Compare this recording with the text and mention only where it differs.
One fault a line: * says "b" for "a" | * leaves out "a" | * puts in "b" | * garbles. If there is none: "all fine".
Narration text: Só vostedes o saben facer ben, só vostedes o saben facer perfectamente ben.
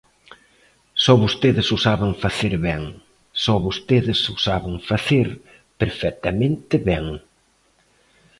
all fine